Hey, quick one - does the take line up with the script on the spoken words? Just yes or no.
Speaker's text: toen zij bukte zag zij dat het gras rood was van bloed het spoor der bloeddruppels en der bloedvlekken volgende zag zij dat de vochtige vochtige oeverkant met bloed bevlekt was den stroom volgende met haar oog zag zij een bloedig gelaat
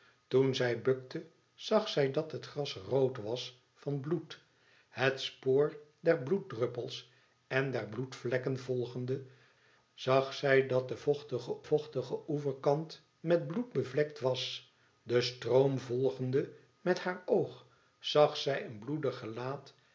yes